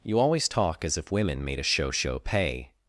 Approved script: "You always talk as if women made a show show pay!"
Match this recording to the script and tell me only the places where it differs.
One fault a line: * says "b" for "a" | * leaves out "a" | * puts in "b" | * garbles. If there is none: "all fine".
all fine